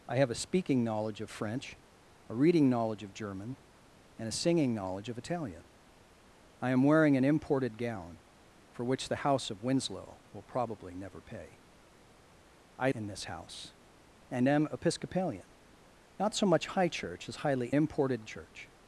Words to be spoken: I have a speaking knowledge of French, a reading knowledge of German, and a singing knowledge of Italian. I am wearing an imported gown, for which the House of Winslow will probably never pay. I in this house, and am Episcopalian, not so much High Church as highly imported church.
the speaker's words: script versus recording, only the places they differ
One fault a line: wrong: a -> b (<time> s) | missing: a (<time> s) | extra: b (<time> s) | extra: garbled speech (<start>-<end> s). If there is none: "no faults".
no faults